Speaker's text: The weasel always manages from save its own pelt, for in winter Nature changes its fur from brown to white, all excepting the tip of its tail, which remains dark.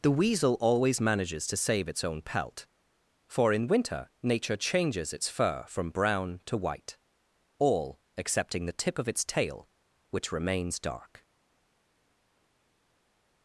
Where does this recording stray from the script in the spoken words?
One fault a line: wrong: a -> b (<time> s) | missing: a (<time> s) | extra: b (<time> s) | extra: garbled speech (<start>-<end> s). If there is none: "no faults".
wrong: from -> to (1.5 s)